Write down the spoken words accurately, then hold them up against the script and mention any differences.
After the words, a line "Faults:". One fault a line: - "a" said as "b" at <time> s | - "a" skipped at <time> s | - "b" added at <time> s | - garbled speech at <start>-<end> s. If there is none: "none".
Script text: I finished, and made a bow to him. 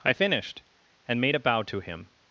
I finished, and made a bow to him.
Faults:
none